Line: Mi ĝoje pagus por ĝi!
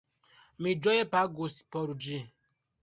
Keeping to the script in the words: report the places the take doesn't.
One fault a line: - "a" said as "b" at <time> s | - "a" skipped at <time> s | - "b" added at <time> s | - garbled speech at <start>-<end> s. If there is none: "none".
none